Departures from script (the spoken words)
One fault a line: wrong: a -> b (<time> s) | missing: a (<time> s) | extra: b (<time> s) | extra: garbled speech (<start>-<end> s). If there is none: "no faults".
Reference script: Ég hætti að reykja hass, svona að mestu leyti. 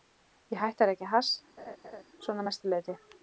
no faults